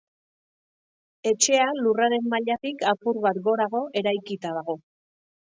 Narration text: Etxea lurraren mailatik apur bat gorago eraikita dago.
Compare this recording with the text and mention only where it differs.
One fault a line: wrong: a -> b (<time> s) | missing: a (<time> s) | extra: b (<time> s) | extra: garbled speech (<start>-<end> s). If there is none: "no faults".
no faults